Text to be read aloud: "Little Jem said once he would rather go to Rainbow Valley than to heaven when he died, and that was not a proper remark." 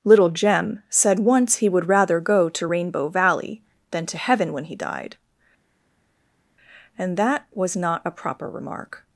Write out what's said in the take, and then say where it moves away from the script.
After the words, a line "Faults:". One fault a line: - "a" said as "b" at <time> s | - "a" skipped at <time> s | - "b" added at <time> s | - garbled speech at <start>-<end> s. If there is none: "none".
"Little Jem said once he would rather go to Rainbow Valley than to heaven when he died, and that was not a proper remark."
Faults:
none